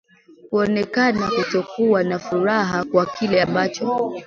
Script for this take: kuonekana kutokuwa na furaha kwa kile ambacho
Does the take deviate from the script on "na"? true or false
false